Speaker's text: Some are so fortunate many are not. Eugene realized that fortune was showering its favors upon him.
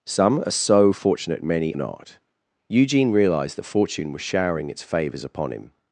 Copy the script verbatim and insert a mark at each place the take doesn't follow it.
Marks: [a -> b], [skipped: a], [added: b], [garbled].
Some are so fortunate many [skipped: are] not. Eugene realized that fortune was showering its favors upon him.